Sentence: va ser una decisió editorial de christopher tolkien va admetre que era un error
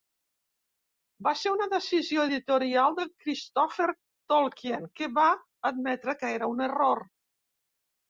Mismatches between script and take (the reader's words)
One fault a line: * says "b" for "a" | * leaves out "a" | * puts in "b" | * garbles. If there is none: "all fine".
* puts in "que"